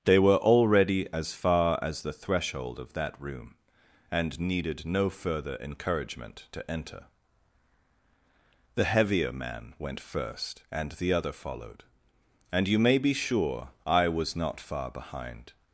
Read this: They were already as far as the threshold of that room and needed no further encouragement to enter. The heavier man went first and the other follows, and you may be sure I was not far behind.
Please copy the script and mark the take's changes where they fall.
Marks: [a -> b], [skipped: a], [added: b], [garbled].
They were already as far as the threshold of that room and needed no further encouragement to enter. The heavier man went first and the other [follows, -> followed] and you may be sure I was not far behind.